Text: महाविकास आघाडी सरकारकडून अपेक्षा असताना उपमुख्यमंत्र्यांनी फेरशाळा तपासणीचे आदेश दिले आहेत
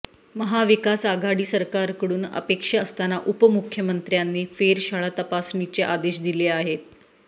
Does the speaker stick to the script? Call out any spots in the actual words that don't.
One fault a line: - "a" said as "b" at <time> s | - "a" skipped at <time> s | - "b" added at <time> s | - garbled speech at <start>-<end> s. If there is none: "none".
none